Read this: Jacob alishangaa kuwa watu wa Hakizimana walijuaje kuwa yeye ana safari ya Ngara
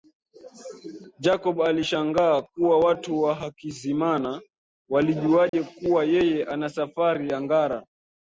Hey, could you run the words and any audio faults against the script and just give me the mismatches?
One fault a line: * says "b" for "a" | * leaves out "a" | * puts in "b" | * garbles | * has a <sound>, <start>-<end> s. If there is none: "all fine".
* has a dropout, 5.5-5.5 s